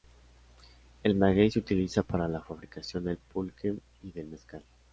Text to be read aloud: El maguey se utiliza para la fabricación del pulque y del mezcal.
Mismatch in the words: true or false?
false